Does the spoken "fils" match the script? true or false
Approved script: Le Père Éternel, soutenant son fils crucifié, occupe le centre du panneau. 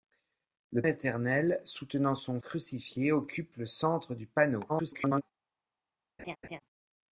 false